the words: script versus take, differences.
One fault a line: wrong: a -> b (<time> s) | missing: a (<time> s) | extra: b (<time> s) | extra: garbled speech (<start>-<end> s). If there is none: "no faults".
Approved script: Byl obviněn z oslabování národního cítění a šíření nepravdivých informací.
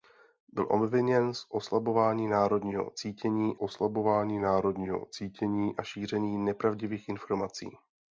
extra: oslabování národního cítění (3.6 s)